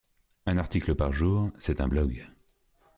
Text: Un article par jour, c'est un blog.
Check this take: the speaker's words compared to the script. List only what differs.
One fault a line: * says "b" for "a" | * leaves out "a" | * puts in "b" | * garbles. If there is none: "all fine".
all fine